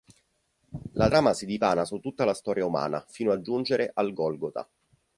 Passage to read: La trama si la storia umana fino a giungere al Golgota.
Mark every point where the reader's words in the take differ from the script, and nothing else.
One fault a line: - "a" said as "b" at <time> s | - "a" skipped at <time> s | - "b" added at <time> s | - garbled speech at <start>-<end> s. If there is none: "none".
- "dipana su tutta" added at 1.4 s